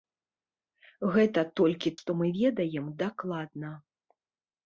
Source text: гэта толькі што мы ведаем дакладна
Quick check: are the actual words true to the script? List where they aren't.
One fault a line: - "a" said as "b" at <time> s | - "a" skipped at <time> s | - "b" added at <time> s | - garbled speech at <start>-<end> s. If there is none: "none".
none